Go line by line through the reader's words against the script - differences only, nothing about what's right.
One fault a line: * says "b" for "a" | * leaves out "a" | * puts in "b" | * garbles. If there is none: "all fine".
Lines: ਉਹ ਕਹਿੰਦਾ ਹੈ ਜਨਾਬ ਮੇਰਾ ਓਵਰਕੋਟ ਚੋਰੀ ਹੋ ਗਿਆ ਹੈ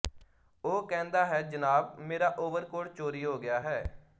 all fine